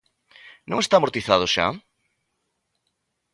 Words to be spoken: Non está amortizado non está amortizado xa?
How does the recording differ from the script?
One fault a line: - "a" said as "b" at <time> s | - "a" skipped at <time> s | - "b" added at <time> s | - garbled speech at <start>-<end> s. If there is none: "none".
- "non está amortizado" skipped at 1.4 s